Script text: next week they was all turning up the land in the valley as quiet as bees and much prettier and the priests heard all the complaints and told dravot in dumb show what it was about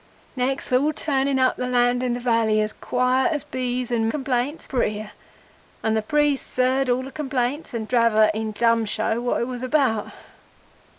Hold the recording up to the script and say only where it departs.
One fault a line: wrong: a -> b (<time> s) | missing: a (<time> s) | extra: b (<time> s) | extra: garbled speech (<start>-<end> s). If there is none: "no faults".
missing: week they was (0.7 s)
wrong: much -> complaints (4.1 s)
missing: told (7.9 s)